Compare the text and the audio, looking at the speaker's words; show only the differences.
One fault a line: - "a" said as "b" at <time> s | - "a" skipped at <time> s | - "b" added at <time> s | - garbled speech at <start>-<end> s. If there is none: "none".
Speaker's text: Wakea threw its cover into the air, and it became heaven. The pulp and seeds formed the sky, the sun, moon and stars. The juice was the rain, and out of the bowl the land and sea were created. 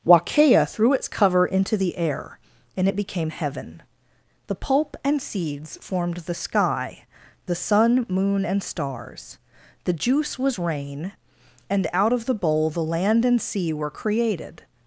- "the" skipped at 10.6 s